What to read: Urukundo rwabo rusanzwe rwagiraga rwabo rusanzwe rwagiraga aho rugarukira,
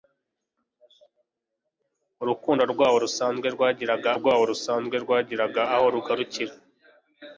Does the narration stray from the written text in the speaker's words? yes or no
no